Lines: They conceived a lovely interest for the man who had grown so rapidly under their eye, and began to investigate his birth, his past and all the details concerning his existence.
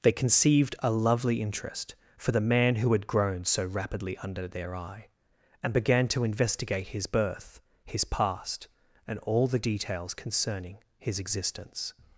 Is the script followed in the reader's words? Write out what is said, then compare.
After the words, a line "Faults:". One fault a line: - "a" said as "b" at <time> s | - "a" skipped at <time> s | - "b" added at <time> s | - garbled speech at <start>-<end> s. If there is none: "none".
They conceived a lovely interest for the man who had grown so rapidly under their eye, and began to investigate his birth, his past and all the details concerning his existence.
Faults:
none